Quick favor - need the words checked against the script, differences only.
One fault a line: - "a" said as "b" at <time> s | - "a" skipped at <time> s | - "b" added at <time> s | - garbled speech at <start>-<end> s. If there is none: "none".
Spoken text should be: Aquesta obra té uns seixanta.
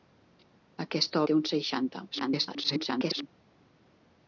- "obra" skipped at 1.2 s
- garbled speech at 2.1-3.3 s